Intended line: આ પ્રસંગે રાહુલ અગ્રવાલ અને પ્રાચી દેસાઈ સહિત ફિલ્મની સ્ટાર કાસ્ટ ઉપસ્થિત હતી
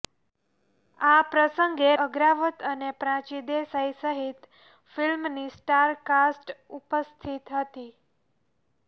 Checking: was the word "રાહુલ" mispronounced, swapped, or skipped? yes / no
yes